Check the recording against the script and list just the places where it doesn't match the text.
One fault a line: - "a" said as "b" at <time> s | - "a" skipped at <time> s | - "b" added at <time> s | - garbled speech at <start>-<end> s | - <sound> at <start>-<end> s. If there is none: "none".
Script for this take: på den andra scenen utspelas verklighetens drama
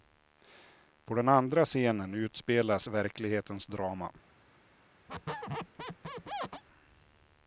- squeak at 5.1-6.6 s